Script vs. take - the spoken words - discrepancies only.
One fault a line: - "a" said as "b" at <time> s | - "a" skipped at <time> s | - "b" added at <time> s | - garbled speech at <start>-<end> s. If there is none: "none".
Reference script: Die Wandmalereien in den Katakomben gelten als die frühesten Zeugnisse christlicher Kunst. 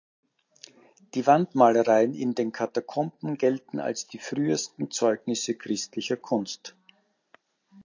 none